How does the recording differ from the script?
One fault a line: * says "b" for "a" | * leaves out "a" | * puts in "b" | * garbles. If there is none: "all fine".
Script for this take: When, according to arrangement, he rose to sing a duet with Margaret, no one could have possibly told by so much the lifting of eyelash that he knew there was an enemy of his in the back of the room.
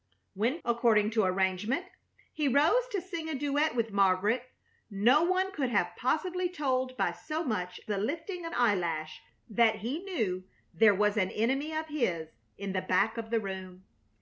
all fine